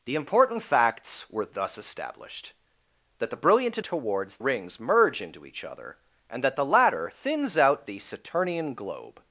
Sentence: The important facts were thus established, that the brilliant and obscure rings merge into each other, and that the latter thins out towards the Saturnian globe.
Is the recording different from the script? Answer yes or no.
yes